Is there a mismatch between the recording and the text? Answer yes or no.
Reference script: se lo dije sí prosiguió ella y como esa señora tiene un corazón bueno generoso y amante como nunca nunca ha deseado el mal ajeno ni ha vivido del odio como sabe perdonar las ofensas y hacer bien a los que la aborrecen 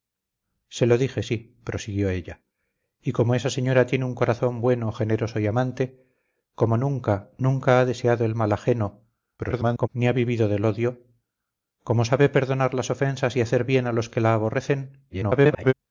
yes